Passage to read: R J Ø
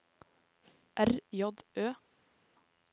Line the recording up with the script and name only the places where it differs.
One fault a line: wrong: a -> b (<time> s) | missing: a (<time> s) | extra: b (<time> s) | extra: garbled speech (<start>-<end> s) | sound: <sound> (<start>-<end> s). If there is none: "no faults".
no faults